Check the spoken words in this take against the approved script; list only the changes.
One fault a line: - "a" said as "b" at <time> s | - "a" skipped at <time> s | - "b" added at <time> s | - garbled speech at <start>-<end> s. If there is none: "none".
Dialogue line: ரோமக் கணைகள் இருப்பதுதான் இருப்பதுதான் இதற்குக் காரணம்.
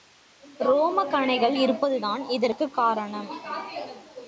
- "இருப்பதுதான்" skipped at 2.3 s